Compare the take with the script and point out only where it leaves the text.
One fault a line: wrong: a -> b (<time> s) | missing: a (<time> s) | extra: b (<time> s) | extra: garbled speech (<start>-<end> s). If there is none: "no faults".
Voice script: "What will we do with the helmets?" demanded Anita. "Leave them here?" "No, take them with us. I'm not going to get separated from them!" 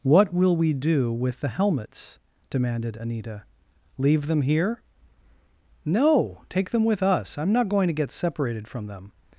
no faults